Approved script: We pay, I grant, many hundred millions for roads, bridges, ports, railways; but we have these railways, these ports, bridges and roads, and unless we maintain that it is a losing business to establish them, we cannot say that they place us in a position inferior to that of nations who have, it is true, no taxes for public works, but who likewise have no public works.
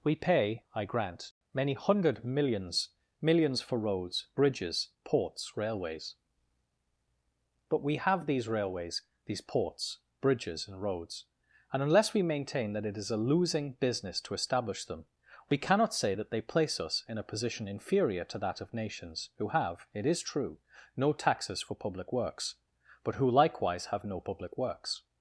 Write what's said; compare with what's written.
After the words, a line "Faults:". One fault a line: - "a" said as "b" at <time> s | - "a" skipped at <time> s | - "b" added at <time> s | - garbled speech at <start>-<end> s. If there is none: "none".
We pay, I grant, many hundred millions millions for roads, bridges, ports, railways; but we have these railways, these ports, bridges and roads, and unless we maintain that it is a losing business to establish them, we cannot say that they place us in a position inferior to that of nations who have, it is true, no taxes for public works, but who likewise have no public works.
Faults:
- "millions" added at 3.2 s